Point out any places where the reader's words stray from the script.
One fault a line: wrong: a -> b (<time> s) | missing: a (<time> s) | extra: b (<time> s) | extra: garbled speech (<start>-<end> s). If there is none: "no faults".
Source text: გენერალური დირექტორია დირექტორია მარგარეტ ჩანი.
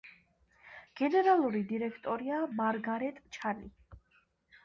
missing: დირექტორია (2.4 s)